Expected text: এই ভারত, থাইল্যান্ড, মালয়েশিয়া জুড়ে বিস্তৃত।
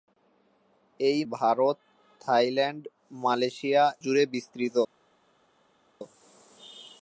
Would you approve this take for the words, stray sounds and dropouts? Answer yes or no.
yes